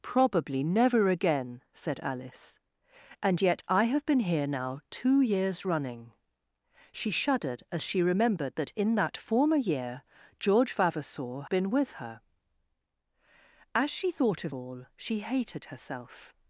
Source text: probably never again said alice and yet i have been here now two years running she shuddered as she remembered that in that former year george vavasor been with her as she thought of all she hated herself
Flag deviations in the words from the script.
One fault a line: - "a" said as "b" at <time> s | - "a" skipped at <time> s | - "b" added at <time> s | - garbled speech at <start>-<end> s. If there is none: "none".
none